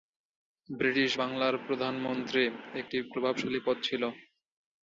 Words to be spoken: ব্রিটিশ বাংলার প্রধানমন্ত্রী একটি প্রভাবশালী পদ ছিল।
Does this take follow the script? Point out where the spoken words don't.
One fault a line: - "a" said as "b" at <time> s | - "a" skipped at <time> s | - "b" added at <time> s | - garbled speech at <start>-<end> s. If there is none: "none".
none